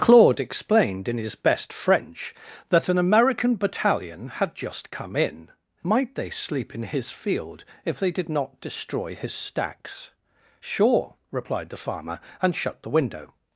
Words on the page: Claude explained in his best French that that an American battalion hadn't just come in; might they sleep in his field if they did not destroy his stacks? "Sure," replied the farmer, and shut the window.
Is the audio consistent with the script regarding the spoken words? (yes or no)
no